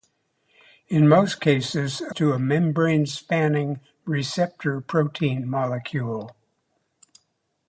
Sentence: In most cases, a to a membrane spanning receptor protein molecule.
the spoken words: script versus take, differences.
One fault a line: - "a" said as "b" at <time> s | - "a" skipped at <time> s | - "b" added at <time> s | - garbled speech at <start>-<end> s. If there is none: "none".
none